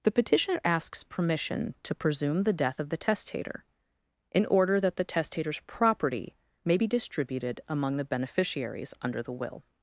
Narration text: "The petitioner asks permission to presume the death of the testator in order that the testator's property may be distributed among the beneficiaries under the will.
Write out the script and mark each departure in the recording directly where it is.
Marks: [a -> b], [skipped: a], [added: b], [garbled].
"The petitioner asks permission to presume the death of the testator in order that the testator's property may be distributed among the beneficiaries under the will.